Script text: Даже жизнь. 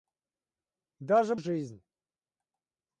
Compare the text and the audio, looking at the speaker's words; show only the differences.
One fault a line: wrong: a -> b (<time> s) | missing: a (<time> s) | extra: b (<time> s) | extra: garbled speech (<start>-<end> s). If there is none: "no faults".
no faults